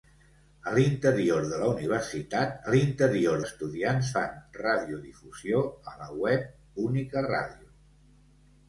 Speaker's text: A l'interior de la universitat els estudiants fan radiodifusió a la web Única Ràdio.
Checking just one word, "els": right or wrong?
wrong